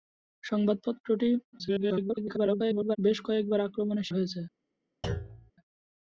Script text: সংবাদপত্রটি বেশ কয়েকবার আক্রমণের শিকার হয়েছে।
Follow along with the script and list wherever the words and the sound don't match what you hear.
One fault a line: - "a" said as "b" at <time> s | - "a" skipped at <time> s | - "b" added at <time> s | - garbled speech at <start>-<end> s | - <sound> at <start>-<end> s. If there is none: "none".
- garbled speech at 1.5-3.0 s
- "শিকার" skipped at 4.1 s
- thud at 5.0-5.5 s